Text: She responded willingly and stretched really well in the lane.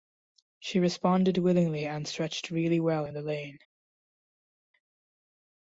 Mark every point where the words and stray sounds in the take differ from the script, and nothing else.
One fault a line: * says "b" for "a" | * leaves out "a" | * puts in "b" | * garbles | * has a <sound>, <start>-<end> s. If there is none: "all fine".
all fine